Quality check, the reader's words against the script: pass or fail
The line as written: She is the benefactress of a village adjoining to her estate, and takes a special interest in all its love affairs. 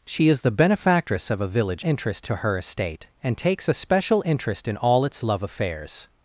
fail